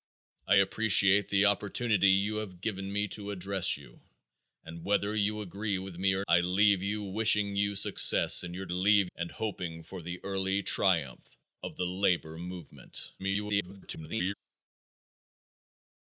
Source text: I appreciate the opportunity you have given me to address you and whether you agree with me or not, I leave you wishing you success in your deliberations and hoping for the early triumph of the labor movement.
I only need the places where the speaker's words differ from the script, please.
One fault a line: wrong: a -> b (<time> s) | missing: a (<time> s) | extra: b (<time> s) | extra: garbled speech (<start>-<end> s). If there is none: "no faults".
missing: not (6.2 s)
wrong: deliberations -> leave (8.7 s)
extra: garbled speech (13.2-14.3 s)